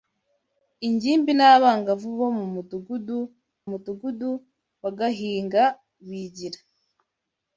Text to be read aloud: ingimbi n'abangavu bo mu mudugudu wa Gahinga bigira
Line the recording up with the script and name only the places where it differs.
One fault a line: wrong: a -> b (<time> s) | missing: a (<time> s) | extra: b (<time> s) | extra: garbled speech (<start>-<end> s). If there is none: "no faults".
extra: mudugudu (3.7 s)